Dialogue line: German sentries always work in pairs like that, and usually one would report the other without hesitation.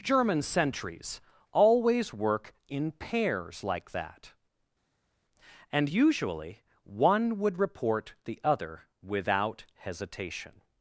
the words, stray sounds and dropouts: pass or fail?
pass